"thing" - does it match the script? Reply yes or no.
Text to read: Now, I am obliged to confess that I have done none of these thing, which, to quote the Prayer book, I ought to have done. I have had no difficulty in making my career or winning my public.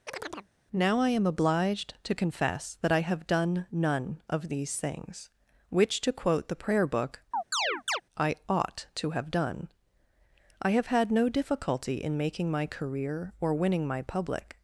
no